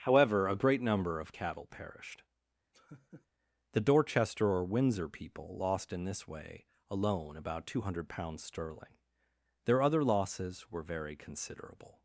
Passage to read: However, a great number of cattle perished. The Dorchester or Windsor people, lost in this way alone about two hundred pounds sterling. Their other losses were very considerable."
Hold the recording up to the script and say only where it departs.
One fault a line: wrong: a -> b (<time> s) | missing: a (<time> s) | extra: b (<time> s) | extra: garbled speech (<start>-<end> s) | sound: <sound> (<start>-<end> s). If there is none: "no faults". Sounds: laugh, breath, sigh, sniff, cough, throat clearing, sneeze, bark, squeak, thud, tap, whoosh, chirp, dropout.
sound: laugh (2.7-3.3 s)